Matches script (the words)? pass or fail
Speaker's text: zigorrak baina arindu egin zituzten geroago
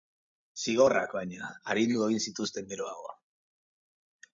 pass